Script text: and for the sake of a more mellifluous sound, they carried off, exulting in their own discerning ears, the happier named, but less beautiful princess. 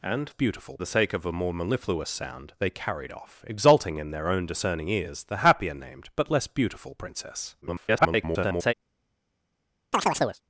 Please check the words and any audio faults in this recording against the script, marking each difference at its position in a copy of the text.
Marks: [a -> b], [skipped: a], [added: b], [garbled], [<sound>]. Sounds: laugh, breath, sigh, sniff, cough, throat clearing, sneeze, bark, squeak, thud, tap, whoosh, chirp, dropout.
and [for -> beautiful] the sake of a more mellifluous sound, they carried off, exulting in their own discerning ears, the happier named, but less beautiful princess. [garbled] [chirp]